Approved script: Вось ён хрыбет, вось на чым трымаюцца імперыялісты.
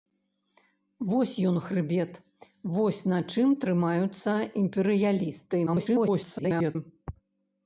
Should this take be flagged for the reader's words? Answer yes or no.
yes